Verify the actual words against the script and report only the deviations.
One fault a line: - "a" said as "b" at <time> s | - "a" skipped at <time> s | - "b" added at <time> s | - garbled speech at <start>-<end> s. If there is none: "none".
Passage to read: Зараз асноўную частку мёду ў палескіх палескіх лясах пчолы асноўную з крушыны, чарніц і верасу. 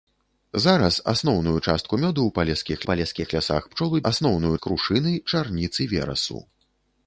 none